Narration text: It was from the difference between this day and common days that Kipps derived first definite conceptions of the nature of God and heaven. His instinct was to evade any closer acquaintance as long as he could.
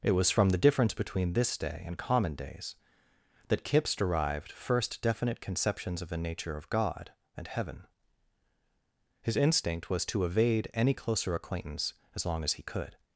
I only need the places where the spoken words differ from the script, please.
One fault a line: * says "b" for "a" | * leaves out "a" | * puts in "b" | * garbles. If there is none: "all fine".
all fine